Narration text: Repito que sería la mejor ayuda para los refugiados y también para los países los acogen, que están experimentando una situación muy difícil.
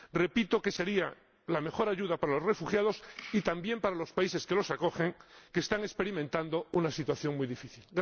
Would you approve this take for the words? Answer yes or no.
no